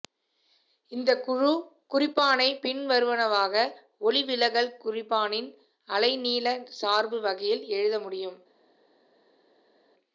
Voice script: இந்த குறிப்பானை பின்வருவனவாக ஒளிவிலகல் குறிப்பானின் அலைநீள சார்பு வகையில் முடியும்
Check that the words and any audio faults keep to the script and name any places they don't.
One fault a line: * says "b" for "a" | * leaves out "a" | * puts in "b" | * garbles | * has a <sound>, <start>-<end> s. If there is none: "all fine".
* puts in "குழு"
* puts in "எழுத"